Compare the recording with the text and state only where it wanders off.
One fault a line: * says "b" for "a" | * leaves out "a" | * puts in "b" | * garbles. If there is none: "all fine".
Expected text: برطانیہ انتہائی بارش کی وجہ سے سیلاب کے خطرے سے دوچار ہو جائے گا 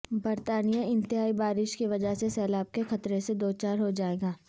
all fine